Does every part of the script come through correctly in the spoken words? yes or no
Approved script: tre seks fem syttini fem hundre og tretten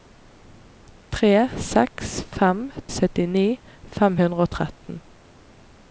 yes